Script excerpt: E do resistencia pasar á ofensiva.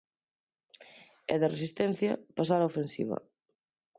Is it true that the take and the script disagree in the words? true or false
true